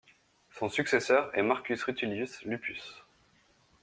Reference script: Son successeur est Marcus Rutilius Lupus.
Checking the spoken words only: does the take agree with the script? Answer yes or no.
yes